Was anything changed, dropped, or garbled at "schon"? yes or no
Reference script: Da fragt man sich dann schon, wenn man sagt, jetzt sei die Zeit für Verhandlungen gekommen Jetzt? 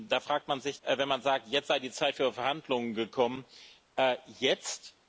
yes